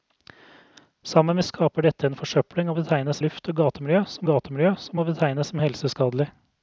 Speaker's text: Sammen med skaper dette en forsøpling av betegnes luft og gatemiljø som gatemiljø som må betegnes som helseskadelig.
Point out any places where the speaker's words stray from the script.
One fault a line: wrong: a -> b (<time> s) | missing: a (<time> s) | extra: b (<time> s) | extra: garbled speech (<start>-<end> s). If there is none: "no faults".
no faults